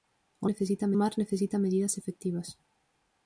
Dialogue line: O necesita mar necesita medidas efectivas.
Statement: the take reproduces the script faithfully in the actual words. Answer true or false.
true